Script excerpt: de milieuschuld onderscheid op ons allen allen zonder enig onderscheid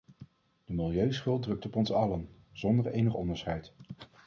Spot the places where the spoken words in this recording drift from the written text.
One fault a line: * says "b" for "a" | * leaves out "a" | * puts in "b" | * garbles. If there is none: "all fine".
* says "drukt" for "onderscheid"
* leaves out "allen"